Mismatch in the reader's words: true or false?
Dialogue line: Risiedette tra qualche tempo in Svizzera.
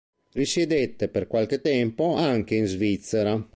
true